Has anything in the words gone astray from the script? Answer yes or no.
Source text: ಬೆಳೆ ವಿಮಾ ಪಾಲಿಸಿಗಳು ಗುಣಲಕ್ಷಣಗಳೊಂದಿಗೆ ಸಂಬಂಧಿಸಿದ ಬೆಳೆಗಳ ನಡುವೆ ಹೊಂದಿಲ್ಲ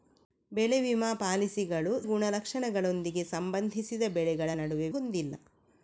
no